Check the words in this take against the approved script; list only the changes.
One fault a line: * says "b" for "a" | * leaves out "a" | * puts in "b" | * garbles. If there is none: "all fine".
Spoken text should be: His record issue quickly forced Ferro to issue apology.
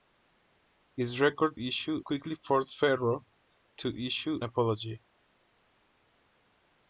all fine